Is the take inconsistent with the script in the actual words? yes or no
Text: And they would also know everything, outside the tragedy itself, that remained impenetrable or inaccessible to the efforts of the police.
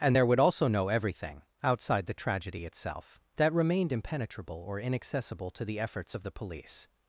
yes